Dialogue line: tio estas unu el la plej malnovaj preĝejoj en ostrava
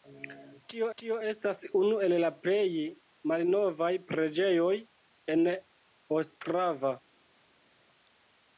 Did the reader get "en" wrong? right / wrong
right